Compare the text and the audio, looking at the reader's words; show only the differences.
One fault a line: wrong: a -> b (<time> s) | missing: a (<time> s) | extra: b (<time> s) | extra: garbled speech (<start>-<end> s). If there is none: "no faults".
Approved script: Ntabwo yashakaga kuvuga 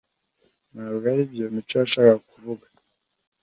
extra: aribyo Mico (1.1 s)